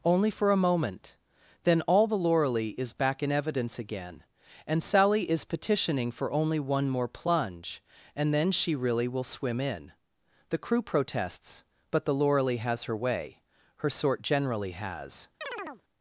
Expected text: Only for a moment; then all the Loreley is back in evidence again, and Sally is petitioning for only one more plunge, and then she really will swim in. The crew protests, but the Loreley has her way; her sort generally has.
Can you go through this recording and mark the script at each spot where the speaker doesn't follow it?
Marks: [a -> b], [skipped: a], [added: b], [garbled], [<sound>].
Only for a moment; then all the Loreley is back in evidence again, and Sally is petitioning for only one more plunge, and then she really will swim in. The crew protests, but the Loreley has her way; her sort generally has. [chirp]